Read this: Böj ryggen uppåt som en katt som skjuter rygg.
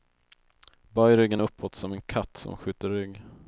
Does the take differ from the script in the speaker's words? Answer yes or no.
no